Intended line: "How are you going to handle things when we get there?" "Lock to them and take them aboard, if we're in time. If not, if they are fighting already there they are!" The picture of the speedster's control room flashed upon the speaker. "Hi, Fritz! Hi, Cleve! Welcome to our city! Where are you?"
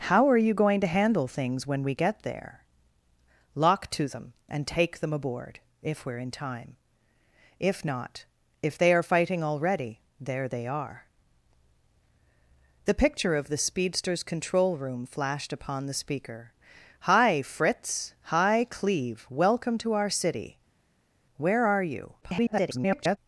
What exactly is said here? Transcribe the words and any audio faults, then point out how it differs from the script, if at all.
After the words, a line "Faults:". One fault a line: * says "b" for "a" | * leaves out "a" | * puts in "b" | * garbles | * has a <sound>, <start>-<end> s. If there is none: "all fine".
"How are you going to handle things when we get there?" "Lock to them and take them aboard, if we're in time. If not, if they are fighting already there they are!" The picture of the speedster's control room flashed upon the speaker. "Hi, Fritz! Hi, Cleve! Welcome to our city! Where are you?" [garbled]
Faults:
* garbles